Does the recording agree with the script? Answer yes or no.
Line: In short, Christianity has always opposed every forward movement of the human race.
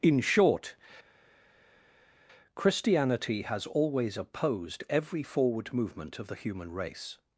yes